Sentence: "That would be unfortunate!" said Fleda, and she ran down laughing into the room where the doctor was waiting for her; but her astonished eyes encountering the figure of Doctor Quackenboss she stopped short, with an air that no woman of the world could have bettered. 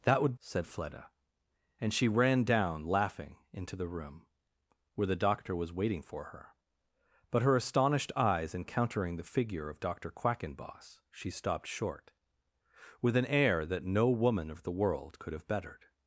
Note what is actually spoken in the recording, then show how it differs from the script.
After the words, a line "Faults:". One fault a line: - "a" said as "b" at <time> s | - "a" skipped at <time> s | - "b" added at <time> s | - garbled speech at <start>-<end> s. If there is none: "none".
"That would!" said Fleda, and she ran down laughing into the room where the doctor was waiting for her; but her astonished eyes encountering the figure of Doctor Quackenboss she stopped short, with an air that no woman of the world could have bettered.
Faults:
- "be unfortunate" skipped at 0.3 s